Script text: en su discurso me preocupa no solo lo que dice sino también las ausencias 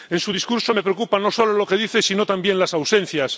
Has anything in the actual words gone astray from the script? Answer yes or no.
no